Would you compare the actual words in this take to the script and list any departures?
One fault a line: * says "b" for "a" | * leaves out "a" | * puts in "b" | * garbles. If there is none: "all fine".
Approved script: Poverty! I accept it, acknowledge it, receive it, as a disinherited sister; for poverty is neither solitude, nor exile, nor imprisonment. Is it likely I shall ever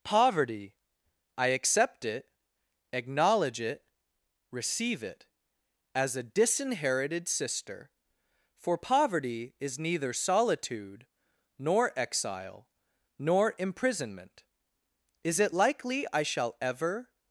all fine